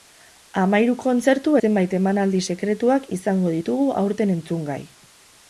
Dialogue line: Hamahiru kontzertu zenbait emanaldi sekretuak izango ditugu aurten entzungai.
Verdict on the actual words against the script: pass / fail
pass